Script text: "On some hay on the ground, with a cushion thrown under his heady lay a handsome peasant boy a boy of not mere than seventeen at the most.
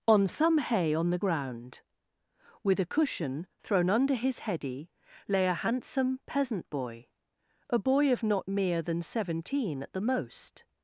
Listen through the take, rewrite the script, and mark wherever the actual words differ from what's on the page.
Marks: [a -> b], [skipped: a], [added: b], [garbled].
"On some hay on the ground, with a cushion thrown under his heady lay a handsome peasant boy a boy of not mere than seventeen at the most.